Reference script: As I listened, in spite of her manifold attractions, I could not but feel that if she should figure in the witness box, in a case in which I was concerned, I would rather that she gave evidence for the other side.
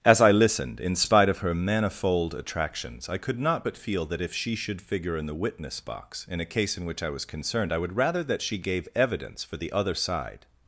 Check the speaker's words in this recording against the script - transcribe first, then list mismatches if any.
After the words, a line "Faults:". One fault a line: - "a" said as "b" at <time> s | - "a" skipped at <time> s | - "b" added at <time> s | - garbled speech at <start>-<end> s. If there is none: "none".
As I listened, in spite of her manifold attractions, I could not but feel that if she should figure in the witness box, in a case in which I was concerned, I would rather that she gave evidence for the other side.
Faults:
none